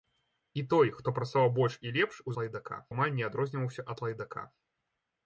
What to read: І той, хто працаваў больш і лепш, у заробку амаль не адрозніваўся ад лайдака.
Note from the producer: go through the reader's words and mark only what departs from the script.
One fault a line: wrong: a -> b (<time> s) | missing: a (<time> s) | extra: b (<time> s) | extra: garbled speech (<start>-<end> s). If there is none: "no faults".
wrong: заробку -> лайдака (2.4 s)